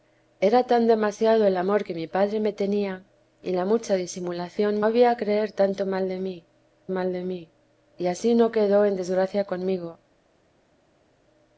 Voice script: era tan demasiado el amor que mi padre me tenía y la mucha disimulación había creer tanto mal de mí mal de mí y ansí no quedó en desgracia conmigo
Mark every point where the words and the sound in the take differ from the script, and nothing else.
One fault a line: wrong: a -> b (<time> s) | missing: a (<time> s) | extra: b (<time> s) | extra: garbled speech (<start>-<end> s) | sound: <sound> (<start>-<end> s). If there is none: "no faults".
no faults